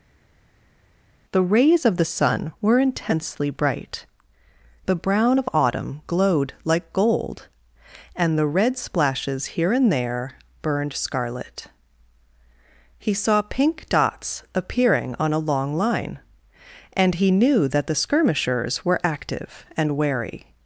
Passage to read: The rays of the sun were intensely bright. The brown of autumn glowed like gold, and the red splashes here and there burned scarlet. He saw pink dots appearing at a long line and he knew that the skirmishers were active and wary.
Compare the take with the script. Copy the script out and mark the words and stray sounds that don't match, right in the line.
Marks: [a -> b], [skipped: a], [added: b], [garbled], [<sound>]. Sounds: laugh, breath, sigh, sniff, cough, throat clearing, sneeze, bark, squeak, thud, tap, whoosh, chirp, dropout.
The rays of the sun were intensely bright. The brown of autumn glowed like gold, and the red splashes here and there burned scarlet. He saw pink dots appearing [at -> on] a long line and he knew that the skirmishers were active and wary.